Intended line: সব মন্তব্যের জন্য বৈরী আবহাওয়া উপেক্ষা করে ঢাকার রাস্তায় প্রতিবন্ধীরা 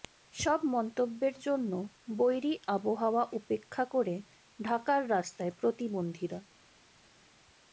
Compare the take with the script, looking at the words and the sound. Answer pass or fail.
pass